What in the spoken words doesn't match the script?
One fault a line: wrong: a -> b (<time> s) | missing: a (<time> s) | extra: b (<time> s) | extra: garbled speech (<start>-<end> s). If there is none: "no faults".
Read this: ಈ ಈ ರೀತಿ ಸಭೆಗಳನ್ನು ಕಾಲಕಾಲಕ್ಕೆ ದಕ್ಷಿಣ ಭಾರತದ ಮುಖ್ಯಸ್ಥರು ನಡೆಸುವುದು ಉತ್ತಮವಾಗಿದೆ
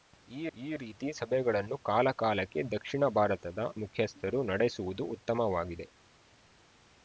no faults